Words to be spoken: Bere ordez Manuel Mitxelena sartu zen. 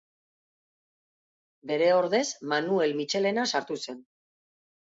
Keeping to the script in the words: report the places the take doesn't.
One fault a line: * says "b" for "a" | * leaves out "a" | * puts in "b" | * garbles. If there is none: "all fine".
all fine